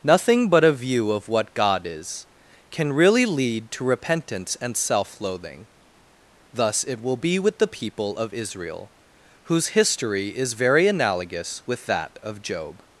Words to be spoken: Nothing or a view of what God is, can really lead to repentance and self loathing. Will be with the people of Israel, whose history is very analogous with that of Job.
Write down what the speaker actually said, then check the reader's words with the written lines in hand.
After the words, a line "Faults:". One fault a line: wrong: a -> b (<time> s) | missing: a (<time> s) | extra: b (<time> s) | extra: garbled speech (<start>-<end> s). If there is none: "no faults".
Nothing but a view of what God is, can really lead to repentance and self loathing. Thus it will be with the people of Israel, whose history is very analogous with that of Job.
Faults:
wrong: or -> but (0.5 s)
extra: Thus it (6.5 s)